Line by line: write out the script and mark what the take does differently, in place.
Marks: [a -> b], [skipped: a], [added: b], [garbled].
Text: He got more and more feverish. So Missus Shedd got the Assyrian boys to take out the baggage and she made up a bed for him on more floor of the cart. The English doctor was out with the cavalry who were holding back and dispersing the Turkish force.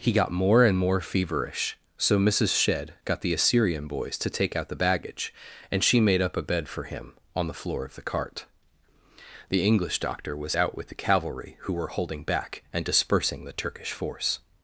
He got more and more feverish. So Missus Shedd got the Assyrian boys to take out the baggage and she made up a bed for him on [more -> the] floor of the cart. The English doctor was out with the cavalry who were holding back and dispersing the Turkish force.